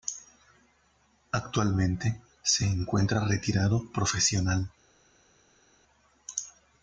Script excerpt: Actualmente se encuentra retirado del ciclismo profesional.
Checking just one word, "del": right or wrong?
wrong